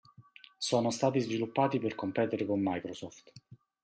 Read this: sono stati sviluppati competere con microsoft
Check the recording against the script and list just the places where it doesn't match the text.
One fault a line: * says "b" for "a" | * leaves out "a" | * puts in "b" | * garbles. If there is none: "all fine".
* puts in "per"